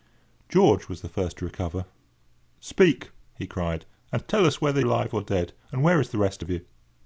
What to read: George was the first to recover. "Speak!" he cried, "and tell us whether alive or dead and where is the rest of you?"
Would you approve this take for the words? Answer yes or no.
yes